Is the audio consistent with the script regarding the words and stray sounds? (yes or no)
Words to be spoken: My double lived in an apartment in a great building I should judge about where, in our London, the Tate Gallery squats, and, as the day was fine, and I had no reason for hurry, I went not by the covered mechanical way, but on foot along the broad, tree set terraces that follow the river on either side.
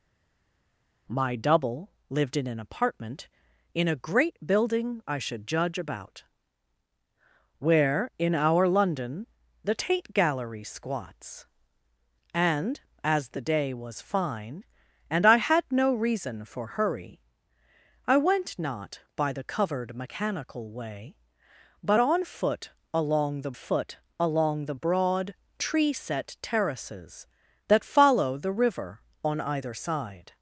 no